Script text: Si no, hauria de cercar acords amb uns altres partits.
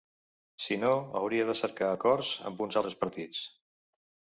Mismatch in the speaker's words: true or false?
false